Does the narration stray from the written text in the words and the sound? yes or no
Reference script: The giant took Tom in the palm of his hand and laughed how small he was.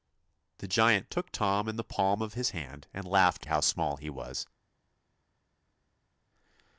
no